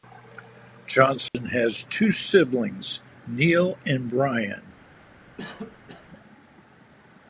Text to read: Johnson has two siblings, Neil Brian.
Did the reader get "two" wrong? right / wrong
right